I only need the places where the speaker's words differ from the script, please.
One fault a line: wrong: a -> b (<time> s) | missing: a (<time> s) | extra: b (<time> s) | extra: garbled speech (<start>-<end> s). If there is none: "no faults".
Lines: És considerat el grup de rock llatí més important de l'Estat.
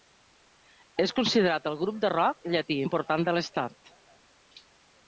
missing: més (2.8 s)